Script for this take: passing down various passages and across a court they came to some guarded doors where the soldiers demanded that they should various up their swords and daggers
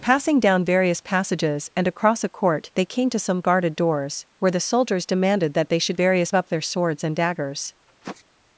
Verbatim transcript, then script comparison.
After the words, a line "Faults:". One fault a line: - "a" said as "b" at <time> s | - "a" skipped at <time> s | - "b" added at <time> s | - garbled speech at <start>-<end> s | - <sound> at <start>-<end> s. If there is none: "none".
passing down various passages and across a court they came to some guarded doors where the soldiers demanded that they should various up their swords and daggers
Faults:
- sniff at 7.9-8.2 s